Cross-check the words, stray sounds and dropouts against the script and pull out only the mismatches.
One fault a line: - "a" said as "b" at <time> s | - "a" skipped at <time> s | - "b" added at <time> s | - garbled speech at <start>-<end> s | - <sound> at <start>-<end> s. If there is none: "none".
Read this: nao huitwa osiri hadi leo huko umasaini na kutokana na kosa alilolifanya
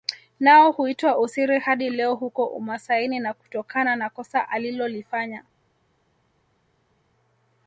none